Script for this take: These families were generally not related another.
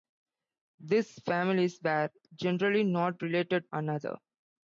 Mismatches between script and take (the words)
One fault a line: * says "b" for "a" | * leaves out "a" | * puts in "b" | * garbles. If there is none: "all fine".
all fine